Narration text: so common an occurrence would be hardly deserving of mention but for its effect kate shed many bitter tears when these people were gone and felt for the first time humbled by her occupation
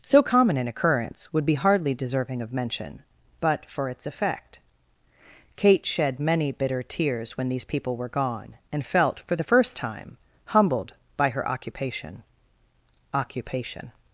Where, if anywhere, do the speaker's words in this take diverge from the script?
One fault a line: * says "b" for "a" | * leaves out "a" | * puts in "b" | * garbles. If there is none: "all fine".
* puts in "occupation"